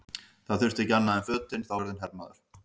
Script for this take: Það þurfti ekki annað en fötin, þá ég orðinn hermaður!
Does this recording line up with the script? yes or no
yes